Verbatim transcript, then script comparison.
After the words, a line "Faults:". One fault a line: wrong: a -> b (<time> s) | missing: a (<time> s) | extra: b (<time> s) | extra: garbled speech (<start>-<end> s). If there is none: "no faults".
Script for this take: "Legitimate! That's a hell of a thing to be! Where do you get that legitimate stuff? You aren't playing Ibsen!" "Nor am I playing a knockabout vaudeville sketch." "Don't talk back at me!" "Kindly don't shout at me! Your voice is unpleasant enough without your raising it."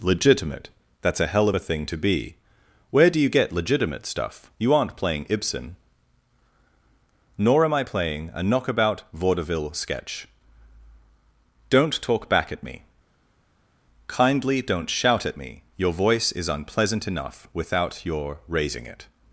"Legitimate! That's a hell of a thing to be! Where do you get legitimate stuff? You aren't playing Ibsen!" "Nor am I playing a knockabout vaudeville sketch." "Don't talk back at me!" "Kindly don't shout at me! Your voice is unpleasant enough without your raising it."
Faults:
missing: that (3.5 s)